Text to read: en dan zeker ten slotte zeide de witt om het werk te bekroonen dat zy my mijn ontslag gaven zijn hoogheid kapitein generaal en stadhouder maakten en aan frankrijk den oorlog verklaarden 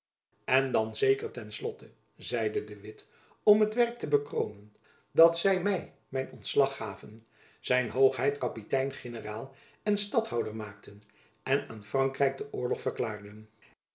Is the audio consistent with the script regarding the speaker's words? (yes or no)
yes